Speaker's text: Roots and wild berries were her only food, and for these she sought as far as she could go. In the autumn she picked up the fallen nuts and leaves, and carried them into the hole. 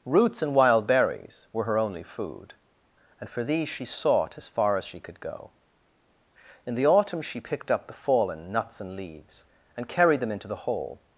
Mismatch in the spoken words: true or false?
false